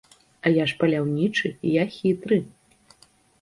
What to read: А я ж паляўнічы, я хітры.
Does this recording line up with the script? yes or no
yes